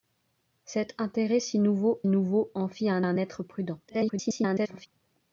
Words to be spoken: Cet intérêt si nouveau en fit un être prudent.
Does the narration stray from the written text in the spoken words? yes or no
yes